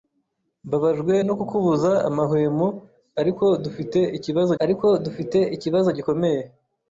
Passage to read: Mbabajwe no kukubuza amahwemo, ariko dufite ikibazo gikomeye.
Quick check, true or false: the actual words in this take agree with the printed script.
false